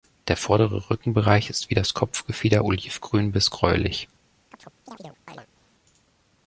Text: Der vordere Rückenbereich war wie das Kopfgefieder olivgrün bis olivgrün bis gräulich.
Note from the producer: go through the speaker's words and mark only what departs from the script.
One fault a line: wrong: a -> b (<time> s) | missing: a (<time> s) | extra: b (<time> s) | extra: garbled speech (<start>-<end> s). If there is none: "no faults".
wrong: war -> ist (1.5 s)
missing: olivgrün bis (3.5 s)